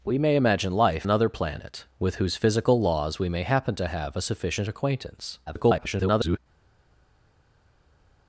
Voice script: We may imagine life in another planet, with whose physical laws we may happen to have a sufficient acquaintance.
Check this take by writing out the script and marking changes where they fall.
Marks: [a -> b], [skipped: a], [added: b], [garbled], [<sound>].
We may imagine life [skipped: in] another planet, with whose physical laws we may happen to have a sufficient acquaintance. [garbled]